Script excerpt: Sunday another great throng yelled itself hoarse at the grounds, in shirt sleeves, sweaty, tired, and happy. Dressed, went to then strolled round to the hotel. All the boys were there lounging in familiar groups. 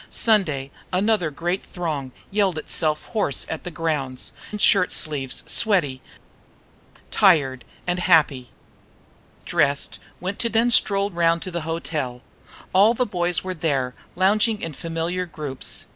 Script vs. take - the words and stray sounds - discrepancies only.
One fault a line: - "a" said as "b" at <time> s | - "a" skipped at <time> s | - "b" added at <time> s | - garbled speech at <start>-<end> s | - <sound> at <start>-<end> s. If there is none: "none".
none